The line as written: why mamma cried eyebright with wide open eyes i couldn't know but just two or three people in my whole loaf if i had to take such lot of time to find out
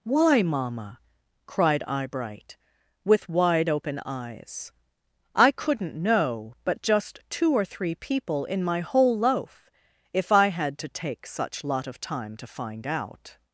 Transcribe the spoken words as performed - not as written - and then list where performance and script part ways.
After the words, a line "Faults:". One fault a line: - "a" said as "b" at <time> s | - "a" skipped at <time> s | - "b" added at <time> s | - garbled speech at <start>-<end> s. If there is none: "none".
why mamma cried eyebright with wide open eyes i couldn't know but just two or three people in my whole loaf if i had to take such lot of time to find out
Faults:
none